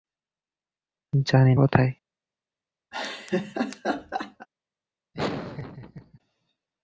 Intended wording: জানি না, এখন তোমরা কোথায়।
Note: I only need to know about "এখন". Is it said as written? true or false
false